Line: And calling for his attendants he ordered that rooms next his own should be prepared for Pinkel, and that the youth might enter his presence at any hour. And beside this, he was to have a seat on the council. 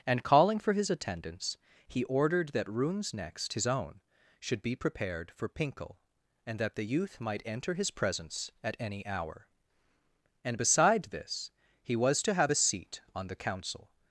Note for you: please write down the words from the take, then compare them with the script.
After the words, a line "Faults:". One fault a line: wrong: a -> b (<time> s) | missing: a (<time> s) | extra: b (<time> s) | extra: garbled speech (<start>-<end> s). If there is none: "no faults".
And calling for his attendants he ordered that rooms next his own should be prepared for Pinkel, and that the youth might enter his presence at any hour. And beside this, he was to have a seat on the council.
Faults:
no faults